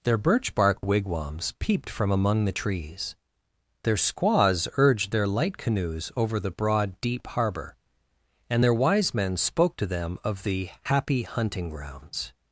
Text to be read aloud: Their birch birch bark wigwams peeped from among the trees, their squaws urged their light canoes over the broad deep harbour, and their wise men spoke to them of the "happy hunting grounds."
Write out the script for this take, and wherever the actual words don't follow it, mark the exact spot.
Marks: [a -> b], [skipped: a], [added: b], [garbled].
Their birch [skipped: birch] bark wigwams peeped from among the trees, their squaws urged their light canoes over the broad deep harbour, and their wise men spoke to them of the "happy hunting grounds."